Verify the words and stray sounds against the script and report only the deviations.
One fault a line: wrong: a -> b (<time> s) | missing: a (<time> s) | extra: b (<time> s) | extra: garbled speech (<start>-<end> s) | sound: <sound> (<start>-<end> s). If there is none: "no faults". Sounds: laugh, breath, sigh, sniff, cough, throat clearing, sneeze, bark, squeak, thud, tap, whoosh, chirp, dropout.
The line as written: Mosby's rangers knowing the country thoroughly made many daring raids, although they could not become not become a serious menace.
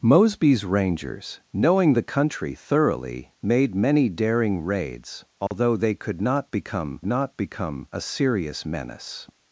sound: dropout (5.5-5.5 s)